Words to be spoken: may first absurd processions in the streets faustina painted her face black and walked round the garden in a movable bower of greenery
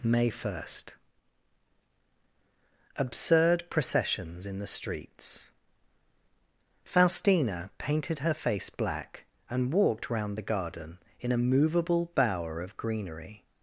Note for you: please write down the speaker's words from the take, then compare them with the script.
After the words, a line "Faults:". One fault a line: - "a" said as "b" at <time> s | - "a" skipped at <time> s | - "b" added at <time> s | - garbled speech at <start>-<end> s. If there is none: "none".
may first absurd processions in the streets faustina painted her face black and walked round the garden in a movable bower of greenery
Faults:
none